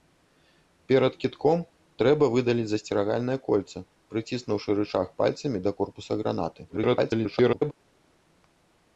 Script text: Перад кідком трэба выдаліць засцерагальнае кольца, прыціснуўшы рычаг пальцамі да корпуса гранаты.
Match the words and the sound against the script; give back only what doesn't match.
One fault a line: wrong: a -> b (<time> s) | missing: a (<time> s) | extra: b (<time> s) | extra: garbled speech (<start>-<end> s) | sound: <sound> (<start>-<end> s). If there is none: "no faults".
extra: garbled speech (6.7-7.7 s)